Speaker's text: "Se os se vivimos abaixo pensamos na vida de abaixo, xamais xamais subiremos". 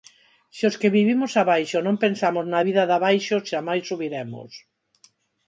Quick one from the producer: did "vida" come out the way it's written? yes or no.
yes